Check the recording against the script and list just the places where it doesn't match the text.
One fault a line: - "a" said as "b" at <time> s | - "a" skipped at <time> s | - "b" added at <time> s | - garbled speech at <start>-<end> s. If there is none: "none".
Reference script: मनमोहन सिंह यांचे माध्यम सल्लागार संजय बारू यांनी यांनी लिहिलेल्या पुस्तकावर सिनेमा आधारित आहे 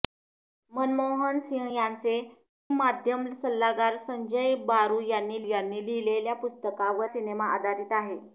none